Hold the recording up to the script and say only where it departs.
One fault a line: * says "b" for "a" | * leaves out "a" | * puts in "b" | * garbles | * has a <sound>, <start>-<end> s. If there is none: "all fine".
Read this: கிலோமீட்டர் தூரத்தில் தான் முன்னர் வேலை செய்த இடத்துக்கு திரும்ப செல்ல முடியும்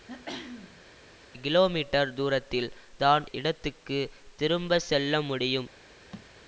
* has a throat clearing, 0.1-0.9 s
* leaves out "முன்னர் வேலை செய்த"
* has a thud, 6.1-6.3 s